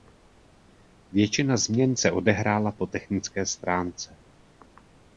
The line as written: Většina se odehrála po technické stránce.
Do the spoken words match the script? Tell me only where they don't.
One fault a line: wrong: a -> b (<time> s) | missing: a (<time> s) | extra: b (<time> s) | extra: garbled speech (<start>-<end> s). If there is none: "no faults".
extra: změn (1.6 s)